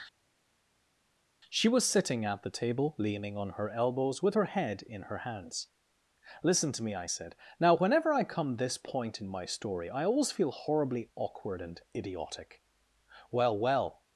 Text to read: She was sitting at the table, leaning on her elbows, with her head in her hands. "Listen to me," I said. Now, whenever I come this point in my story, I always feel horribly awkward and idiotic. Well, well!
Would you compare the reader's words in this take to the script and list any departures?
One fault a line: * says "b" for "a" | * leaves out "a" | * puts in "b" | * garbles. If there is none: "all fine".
all fine